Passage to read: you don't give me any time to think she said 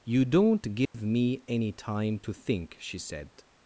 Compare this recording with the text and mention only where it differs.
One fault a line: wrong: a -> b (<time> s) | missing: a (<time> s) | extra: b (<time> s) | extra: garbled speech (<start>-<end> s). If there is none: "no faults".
no faults